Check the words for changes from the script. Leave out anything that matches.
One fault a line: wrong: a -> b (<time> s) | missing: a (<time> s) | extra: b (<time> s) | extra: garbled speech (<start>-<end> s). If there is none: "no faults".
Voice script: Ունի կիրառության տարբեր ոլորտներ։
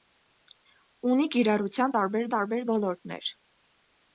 extra: տարբեր (2.3 s)